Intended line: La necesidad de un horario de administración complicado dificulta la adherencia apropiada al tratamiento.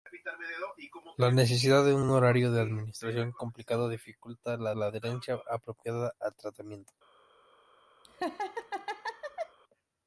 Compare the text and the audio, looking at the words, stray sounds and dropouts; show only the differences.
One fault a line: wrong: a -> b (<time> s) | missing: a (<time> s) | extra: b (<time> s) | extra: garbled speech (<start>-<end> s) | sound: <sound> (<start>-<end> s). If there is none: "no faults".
extra: un (2.0 s)
extra: la (4.7 s)
sound: laugh (8.0-9.6 s)